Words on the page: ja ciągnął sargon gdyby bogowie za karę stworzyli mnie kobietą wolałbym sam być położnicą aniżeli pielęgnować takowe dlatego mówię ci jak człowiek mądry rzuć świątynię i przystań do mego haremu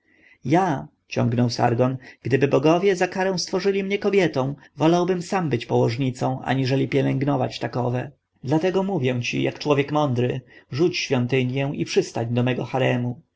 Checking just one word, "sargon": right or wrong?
right